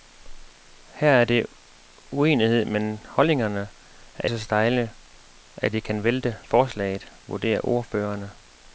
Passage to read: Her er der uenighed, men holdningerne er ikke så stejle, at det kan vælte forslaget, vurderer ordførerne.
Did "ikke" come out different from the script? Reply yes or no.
yes